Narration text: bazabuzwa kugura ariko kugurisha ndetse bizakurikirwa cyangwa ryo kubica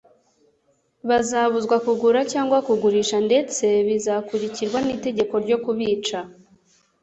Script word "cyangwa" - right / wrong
wrong